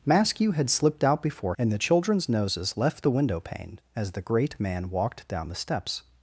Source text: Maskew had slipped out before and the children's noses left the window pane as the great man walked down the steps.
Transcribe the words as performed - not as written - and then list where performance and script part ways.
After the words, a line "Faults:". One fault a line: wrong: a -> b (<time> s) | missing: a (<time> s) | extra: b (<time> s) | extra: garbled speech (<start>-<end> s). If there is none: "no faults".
Maskew had slipped out before and the children's noses left the window pane as the great man walked down the steps.
Faults:
no faults